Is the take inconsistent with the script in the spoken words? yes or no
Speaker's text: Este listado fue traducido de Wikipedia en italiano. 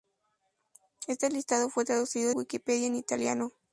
yes